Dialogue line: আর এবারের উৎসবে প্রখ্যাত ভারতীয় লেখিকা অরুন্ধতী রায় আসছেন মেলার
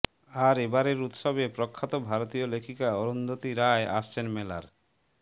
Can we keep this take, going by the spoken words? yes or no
yes